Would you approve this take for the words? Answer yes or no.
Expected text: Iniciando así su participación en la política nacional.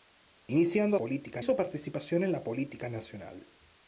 no